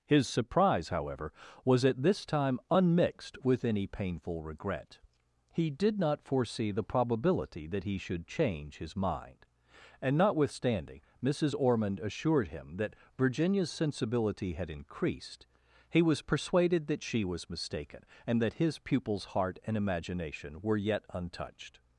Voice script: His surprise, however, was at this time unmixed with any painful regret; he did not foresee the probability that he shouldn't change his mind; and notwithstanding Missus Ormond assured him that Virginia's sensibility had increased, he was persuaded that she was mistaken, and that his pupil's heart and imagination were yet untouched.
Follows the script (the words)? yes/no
no